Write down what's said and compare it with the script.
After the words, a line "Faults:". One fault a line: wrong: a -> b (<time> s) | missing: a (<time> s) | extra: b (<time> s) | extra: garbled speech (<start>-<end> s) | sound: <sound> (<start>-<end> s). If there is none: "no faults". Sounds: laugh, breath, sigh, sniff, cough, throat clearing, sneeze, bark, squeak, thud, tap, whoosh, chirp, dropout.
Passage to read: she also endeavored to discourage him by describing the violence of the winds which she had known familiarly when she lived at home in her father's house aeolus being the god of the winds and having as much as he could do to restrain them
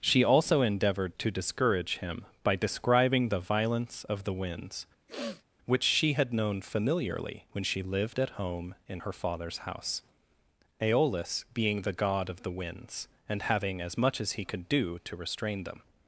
she also endeavored to discourage him by describing the violence of the winds which she had known familiarly when she lived at home in her father's house aeolus being the god of the winds and having as much as he could do to restrain them
Faults:
sound: sniff (5.1-5.4 s)